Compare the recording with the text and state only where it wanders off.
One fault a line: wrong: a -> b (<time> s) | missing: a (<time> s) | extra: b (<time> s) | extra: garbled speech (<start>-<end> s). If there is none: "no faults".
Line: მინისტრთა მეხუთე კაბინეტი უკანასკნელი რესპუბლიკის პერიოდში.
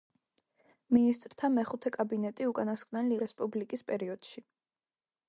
no faults